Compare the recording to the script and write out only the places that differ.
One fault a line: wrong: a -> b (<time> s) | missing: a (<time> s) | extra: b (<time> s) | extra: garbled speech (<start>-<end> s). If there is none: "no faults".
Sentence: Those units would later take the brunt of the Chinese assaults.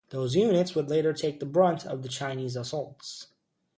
no faults